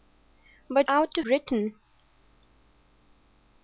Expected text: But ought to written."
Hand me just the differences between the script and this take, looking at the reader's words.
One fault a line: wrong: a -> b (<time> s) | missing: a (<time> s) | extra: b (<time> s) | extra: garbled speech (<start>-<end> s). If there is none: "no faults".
no faults